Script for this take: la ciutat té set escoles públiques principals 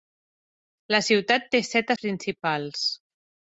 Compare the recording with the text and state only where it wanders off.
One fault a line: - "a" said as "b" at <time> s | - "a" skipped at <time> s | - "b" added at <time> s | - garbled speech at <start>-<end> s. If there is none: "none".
- "escoles públiques" skipped at 1.9 s